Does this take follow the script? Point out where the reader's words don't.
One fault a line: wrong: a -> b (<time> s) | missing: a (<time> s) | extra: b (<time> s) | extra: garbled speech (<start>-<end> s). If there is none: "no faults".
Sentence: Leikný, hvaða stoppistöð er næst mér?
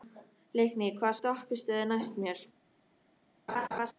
no faults